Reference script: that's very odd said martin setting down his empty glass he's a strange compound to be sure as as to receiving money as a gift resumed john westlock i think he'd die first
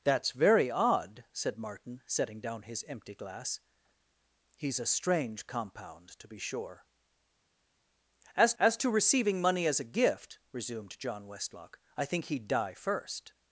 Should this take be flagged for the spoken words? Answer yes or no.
no